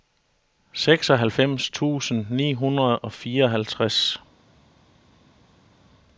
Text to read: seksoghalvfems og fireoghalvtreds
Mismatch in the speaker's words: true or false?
true